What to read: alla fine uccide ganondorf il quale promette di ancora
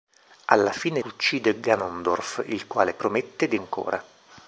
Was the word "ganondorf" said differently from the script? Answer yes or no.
no